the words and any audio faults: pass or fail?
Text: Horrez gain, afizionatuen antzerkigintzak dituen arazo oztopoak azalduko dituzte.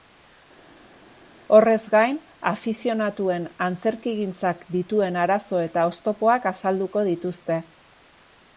fail